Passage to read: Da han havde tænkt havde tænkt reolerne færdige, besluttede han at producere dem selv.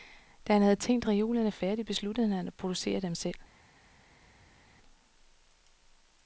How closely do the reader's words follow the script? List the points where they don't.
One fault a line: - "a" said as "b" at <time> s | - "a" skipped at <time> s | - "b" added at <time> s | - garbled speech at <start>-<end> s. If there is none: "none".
- "havde tænkt" skipped at 1.1 s